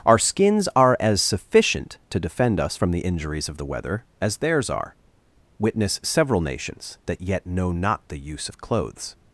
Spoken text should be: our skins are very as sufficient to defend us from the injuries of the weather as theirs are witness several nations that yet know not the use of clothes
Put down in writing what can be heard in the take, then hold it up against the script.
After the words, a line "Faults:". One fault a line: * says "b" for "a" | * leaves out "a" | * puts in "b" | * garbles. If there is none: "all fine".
our skins are as sufficient to defend us from the injuries of the weather as theirs are witness several nations that yet know not the use of clothes
Faults:
* leaves out "very"